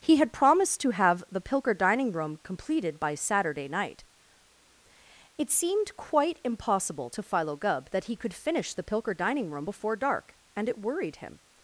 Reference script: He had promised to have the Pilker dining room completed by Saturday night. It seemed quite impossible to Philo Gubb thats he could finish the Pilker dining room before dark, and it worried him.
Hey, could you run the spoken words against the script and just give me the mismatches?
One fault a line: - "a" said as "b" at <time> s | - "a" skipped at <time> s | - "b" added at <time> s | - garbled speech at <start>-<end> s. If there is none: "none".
- "thats" said as "that" at 7.9 s